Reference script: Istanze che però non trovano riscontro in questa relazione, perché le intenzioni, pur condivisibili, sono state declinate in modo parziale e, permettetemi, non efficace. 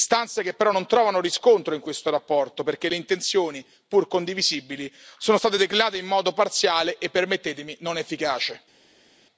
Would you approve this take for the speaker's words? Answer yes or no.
yes